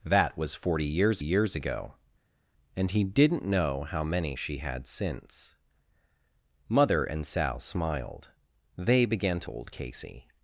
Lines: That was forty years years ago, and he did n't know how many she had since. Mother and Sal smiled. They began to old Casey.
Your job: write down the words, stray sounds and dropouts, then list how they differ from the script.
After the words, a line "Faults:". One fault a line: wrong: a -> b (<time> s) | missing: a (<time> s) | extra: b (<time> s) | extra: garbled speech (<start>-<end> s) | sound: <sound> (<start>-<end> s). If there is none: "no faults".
That was forty years years ago, and he did n't know how many she had since. Mother and Sal smiled. They began to old Casey.
Faults:
no faults